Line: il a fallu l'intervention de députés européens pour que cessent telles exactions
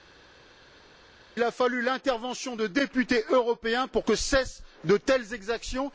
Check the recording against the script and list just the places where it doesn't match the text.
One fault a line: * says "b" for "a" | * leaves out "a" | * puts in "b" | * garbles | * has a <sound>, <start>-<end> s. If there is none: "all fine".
* puts in "de"